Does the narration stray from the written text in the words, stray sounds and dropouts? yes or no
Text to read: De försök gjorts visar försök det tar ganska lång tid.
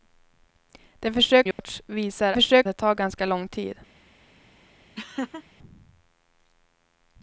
yes